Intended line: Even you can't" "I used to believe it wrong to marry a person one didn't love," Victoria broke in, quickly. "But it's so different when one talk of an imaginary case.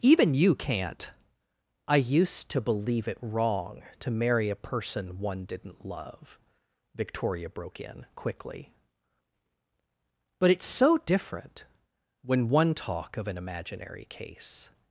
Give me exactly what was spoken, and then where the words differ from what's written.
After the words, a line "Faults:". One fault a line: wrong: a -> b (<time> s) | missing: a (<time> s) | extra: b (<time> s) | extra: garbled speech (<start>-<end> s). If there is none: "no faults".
Even you can't" "I used to believe it wrong to marry a person one didn't love," Victoria broke in, quickly. "But it's so different when one talk of an imaginary case.
Faults:
no faults